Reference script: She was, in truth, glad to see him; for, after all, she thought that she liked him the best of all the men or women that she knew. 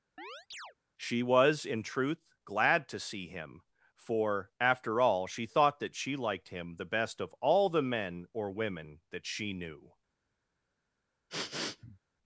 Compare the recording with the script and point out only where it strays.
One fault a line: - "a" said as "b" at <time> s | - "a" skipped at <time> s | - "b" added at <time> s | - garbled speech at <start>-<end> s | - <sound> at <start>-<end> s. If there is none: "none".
- chirp at 0.2-0.7 s
- sniff at 11.3-12.0 s